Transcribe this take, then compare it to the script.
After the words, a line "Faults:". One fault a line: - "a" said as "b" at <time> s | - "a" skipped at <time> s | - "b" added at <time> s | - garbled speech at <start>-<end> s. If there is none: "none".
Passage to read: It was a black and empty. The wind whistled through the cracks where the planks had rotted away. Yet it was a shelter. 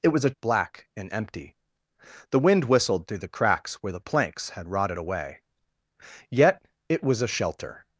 It was a black and empty. The wind whistled through the cracks where the planks had rotted away. Yet it was a shelter.
Faults:
none